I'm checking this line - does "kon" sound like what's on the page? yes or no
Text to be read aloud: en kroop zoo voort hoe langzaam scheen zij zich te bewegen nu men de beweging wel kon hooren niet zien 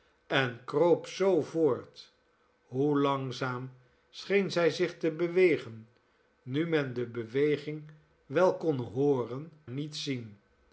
yes